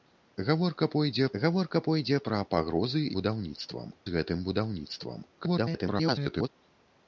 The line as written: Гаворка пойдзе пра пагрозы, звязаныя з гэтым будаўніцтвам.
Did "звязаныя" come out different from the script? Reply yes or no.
yes